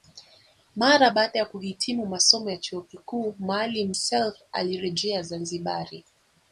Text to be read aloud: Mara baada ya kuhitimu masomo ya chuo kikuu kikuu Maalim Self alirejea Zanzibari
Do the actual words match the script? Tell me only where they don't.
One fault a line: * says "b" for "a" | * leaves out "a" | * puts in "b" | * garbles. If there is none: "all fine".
* leaves out "kikuu"